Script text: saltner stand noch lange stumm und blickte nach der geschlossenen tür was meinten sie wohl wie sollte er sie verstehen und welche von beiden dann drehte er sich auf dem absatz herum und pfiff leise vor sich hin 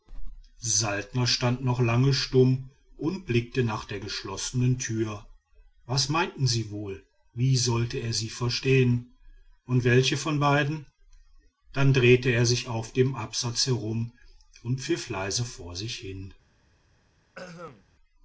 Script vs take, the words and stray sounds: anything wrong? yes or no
yes